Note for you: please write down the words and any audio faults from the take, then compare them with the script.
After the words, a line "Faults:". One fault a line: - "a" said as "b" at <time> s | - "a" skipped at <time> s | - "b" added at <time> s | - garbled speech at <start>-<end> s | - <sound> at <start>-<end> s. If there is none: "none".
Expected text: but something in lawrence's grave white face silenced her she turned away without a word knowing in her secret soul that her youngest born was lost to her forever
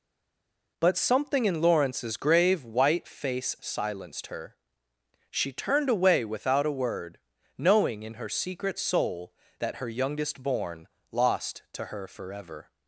but something in lawrence's grave white face silenced her she turned away without a word knowing in her secret soul that her youngest born lost to her forever
Faults:
- "was" skipped at 10.9 s